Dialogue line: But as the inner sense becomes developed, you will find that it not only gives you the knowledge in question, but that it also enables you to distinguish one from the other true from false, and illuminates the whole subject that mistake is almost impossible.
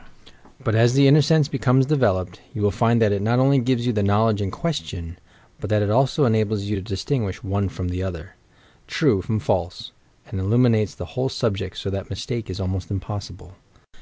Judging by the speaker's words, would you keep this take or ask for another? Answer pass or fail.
fail